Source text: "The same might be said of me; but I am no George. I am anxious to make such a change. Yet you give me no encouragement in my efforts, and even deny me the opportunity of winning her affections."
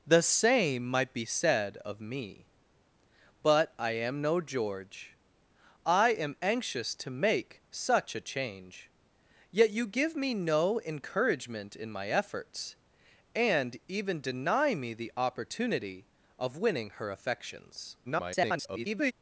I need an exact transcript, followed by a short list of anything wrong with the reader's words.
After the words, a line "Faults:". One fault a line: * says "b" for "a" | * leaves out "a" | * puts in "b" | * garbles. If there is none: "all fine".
"The same might be said of me; but I am no George. I am anxious to make such a change. Yet you give me no encouragement in my efforts, and even deny me the opportunity of winning her affections." [garbled]
Faults:
* garbles